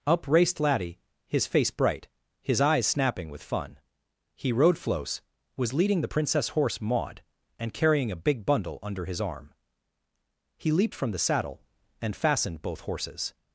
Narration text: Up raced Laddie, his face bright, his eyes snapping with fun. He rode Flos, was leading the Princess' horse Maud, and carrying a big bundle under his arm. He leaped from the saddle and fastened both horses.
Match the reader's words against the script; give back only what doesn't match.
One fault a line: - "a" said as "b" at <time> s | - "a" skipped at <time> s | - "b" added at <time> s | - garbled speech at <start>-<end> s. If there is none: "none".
none